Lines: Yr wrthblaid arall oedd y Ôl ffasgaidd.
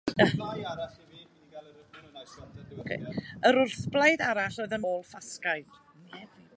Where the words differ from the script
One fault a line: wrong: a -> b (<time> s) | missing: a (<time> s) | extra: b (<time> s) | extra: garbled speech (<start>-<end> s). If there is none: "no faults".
no faults